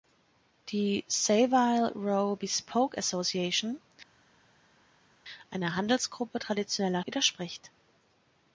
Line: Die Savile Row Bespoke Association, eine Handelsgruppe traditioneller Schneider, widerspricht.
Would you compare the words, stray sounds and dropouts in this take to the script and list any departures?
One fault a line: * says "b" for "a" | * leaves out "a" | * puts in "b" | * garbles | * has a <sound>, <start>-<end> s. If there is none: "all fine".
* leaves out "Schneider"